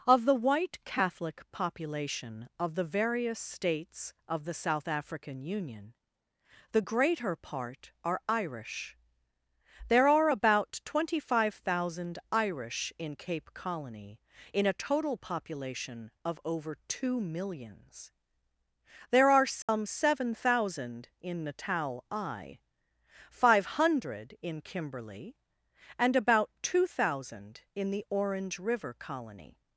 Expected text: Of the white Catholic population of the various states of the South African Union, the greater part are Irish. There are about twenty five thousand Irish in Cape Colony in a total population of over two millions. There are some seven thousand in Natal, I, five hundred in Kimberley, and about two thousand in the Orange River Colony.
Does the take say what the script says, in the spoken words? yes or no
yes